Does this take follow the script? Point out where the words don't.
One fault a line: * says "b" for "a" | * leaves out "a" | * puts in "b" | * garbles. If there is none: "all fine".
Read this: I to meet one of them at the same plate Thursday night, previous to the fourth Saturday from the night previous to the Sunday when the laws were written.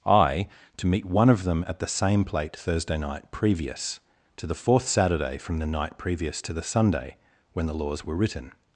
all fine